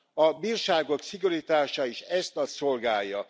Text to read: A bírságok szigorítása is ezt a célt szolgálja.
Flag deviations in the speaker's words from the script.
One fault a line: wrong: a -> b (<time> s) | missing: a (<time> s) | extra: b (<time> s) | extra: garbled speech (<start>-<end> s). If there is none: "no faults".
missing: célt (2.4 s)